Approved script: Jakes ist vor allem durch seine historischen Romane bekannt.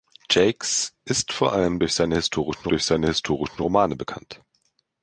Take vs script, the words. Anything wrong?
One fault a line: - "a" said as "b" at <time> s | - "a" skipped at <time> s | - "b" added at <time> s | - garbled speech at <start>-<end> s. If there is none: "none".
- "durch seine historischen" added at 2.7 s